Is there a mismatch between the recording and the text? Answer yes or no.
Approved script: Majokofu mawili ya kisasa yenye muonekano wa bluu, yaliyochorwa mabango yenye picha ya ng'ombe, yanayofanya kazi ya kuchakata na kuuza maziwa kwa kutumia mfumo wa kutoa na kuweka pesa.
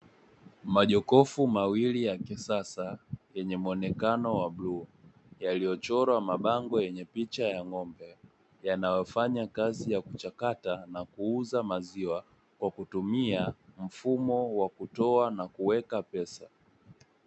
no